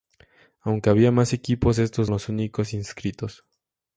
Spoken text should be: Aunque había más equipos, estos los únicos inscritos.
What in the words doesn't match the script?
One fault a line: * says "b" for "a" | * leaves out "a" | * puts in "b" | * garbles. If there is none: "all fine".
all fine